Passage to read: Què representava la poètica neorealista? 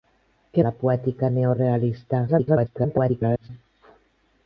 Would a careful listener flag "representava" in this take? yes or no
yes